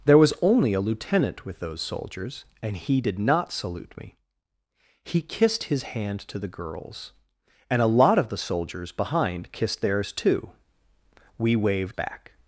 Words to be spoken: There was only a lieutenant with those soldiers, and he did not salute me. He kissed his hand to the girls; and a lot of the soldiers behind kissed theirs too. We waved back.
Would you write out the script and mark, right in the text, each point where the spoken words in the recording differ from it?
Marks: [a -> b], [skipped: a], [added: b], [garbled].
There was only a lieutenant with those soldiers, and he did not salute me. He kissed his hand to the girls; and a lot of the soldiers behind kissed theirs too. We waved back.